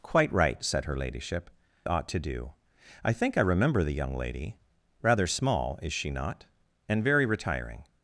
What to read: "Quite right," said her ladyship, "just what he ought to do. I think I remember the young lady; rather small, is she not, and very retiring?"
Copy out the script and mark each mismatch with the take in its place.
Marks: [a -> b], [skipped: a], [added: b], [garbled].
"Quite right," said her ladyship, [skipped: "just what he] ought to do. I think I remember the young lady; rather small, is she not, and very retiring?"